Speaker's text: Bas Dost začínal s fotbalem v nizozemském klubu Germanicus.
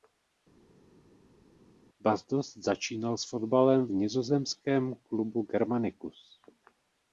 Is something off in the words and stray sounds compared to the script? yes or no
no